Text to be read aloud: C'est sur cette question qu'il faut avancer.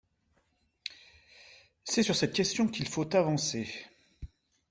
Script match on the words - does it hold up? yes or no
yes